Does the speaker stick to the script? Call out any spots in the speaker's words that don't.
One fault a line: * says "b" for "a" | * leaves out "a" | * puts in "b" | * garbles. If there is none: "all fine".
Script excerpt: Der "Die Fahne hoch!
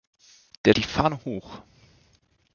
all fine